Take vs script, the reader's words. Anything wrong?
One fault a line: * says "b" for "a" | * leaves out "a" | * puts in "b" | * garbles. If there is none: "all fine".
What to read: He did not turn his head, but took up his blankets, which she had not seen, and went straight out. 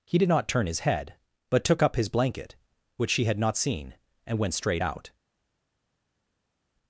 * says "blanket" for "blankets"